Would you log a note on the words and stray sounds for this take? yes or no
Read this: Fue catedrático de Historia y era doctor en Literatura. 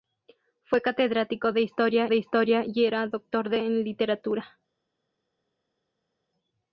yes